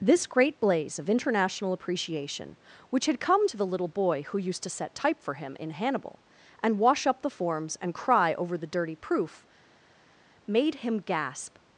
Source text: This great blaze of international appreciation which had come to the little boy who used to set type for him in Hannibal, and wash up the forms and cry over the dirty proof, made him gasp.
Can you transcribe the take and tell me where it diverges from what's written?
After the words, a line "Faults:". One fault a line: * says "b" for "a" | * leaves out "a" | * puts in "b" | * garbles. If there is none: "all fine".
This great blaze of international appreciation which had come to the little boy who used to set type for him in Hannibal, and wash up the forms and cry over the dirty proof, made him gasp.
Faults:
all fine